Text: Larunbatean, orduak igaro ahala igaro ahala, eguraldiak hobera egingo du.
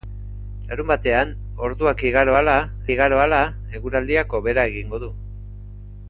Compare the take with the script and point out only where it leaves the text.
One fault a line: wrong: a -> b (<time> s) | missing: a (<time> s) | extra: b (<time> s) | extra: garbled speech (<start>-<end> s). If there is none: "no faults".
no faults